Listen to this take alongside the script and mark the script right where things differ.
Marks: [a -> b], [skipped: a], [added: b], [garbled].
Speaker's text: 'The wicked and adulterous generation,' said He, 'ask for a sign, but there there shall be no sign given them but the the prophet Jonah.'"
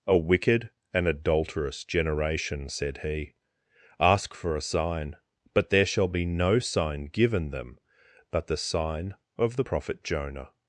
['The -> A] wicked and adulterous generation,' said He, 'ask for a sign, but there [skipped: there] shall be no sign given them but the [added: sign of] the prophet Jonah.'"